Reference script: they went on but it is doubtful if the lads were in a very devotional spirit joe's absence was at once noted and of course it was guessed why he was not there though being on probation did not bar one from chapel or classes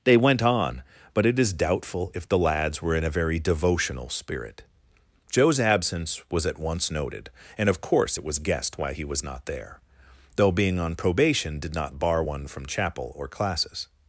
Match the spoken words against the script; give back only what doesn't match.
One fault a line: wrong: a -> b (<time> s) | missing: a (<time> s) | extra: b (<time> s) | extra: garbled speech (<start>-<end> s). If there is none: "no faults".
no faults